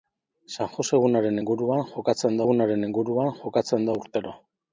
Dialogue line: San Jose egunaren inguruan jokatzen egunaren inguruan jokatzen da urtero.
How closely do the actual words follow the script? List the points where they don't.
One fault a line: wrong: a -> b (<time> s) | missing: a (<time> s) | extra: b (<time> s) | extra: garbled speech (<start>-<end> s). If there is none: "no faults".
no faults